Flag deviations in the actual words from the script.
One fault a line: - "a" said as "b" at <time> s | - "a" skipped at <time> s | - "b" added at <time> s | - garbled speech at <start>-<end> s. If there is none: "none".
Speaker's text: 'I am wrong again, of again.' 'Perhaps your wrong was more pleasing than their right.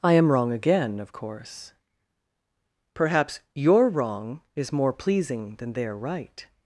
- "again" said as "course" at 1.1 s
- "was" said as "is" at 4.5 s